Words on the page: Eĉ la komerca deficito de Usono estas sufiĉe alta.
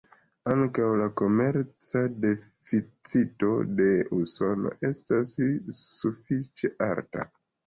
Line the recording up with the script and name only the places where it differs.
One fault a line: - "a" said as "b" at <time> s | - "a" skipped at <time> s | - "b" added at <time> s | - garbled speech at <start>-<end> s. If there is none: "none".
- "Eĉ" said as "Ankaŭ" at 0.5 s